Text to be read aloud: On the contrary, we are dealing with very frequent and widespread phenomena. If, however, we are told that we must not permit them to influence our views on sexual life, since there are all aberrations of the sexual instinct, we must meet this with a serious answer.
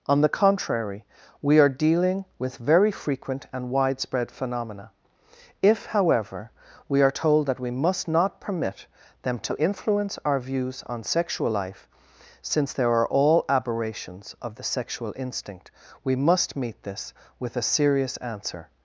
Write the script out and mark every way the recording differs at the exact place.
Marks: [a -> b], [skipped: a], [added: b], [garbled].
On the contrary, we are dealing with very frequent and widespread phenomena. If, however, we are told that we must not permit them to influence our views on sexual life, since there are all aberrations of the sexual instinct, we must meet this with a serious answer.